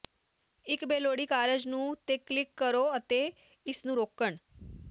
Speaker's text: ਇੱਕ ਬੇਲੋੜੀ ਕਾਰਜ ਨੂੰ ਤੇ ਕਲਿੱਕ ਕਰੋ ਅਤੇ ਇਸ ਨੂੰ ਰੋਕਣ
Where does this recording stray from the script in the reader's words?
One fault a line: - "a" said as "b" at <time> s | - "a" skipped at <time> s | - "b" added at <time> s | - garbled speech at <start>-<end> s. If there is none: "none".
none